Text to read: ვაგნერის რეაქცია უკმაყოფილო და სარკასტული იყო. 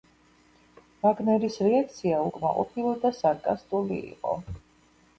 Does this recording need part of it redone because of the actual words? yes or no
no